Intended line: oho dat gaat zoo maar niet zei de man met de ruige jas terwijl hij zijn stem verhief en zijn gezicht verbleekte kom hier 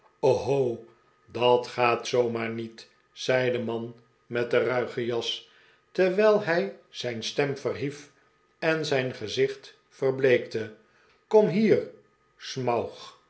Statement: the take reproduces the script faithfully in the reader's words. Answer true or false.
true